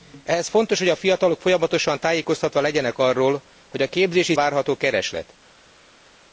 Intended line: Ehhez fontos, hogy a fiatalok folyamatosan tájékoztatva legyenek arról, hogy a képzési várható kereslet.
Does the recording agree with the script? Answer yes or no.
yes